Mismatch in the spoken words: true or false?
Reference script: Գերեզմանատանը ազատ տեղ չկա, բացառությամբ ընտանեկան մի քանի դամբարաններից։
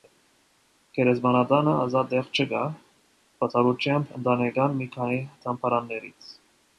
false